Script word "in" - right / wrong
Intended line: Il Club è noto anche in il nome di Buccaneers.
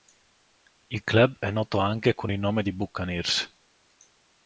wrong